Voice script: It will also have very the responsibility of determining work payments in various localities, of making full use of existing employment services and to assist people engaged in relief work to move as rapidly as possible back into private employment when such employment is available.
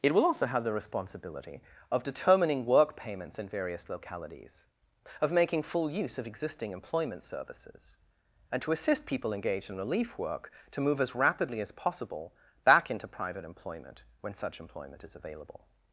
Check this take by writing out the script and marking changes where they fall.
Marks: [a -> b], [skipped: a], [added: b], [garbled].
It will also have [skipped: very] the responsibility of determining work payments in various localities, of making full use of existing employment services and to assist people engaged in relief work to move as rapidly as possible back into private employment when such employment is available.